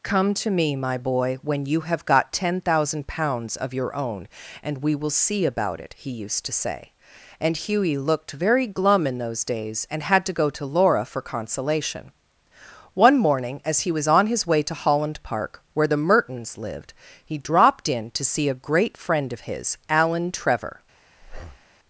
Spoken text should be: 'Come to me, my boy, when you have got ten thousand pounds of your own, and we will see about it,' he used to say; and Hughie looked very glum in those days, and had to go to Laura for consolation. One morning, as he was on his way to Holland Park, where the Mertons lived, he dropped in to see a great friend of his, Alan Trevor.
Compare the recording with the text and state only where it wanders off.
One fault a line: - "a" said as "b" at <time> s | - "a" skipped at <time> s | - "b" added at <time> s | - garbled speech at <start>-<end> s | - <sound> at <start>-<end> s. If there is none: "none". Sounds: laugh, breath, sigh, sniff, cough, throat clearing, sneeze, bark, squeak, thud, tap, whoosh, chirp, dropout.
- breath at 21.2-21.7 s